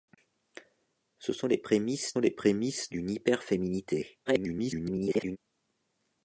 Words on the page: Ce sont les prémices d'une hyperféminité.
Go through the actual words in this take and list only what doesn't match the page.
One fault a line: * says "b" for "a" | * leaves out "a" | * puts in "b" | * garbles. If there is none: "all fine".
* puts in "les prémices"
* garbles